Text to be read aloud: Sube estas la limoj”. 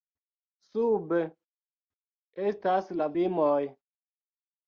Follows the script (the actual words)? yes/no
yes